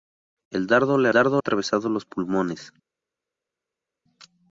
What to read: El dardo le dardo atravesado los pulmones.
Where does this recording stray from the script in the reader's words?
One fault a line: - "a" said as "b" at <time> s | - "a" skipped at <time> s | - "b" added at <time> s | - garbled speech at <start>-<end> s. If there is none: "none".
none